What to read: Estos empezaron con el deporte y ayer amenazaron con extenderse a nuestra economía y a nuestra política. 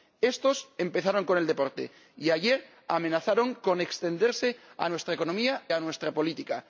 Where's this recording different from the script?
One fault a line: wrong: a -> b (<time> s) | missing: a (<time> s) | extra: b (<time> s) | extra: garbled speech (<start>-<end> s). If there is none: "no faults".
missing: y (5.6 s)